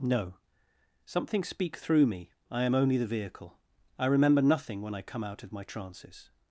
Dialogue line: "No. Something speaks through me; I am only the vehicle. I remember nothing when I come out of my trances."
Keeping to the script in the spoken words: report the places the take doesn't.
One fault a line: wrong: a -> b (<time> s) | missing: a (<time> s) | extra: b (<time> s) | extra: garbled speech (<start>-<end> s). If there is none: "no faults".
wrong: speaks -> speak (1.4 s)